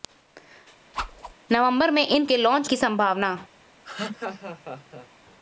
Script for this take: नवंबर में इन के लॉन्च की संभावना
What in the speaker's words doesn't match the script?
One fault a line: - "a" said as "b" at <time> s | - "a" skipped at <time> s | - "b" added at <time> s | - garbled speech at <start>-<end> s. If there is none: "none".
none